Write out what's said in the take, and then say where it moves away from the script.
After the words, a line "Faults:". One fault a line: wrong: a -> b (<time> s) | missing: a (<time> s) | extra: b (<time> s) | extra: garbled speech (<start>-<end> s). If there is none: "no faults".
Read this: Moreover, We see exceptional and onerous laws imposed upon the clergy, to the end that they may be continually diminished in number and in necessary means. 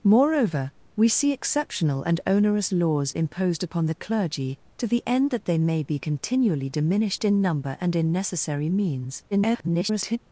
Moreover, We see exceptional and onerous laws imposed upon the clergy, to the end that they may be continually diminished in number and in necessary means. [garbled]
Faults:
extra: garbled speech (9.3-10.2 s)